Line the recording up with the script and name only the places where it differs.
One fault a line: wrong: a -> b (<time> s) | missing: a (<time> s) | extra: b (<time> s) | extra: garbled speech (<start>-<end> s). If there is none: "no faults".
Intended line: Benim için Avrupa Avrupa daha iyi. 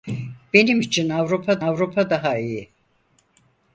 no faults